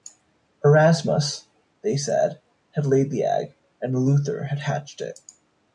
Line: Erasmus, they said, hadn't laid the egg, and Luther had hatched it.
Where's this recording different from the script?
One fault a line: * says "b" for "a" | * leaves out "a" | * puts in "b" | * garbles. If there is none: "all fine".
* says "had" for "hadn't"